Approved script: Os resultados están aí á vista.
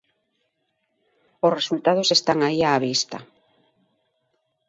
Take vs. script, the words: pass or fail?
pass